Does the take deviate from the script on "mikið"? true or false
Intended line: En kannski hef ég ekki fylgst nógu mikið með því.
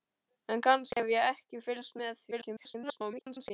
true